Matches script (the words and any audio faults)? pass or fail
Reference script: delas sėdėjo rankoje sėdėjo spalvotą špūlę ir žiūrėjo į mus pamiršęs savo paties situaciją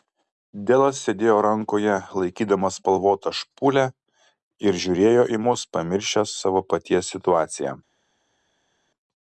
fail